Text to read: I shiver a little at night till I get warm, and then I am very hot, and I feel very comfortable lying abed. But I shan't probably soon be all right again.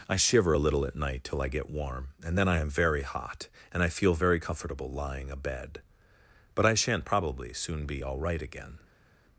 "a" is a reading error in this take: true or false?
false